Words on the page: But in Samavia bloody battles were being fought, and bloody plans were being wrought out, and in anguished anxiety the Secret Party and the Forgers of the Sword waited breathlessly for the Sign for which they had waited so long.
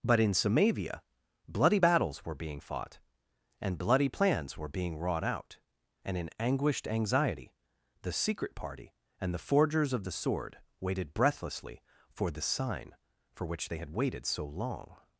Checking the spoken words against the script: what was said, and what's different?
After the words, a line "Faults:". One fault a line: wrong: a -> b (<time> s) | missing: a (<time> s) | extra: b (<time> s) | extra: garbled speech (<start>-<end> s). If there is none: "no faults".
But in Samavia bloody battles were being fought, and bloody plans were being wrought out, and in anguished anxiety the Secret Party and the Forgers of the Sword waited breathlessly for the Sign for which they had waited so long.
Faults:
no faults